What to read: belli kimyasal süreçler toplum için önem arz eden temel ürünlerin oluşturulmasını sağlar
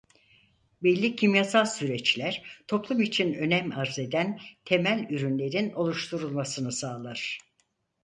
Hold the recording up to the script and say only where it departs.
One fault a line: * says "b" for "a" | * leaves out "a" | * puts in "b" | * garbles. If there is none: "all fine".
all fine